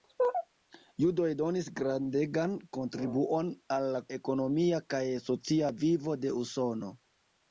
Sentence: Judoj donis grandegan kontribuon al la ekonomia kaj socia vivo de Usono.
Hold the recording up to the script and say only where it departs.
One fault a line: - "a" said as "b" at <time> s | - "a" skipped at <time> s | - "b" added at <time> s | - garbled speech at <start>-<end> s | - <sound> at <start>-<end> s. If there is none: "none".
none